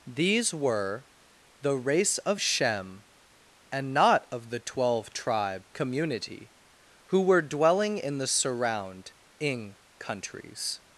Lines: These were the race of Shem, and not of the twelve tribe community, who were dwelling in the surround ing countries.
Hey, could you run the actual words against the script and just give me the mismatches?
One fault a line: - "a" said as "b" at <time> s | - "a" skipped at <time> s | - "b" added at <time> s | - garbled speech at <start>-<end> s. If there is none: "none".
none